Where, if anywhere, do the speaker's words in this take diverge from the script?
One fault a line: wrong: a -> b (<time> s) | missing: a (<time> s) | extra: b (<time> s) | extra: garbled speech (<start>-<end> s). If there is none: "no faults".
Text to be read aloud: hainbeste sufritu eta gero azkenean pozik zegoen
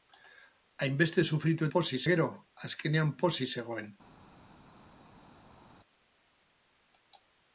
wrong: eta -> pozik (1.8 s)